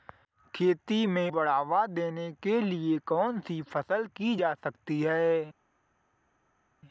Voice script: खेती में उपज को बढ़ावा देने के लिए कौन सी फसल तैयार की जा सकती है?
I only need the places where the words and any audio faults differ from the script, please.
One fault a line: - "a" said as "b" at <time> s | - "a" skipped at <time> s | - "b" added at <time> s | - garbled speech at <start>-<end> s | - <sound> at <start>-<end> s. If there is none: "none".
- "उपज को" skipped at 1.3 s
- "तैयार" skipped at 4.1 s